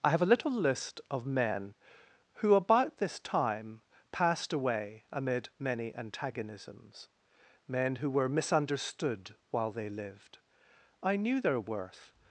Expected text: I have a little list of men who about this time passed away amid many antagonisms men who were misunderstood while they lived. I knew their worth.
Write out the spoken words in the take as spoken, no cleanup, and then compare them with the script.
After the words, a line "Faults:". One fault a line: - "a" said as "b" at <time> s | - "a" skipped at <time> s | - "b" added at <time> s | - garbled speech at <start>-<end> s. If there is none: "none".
I have a little list of men who about this time passed away amid many antagonisms men who were misunderstood while they lived. I knew their worth.
Faults:
none